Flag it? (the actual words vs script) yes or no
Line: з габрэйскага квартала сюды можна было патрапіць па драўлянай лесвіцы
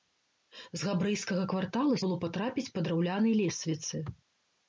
yes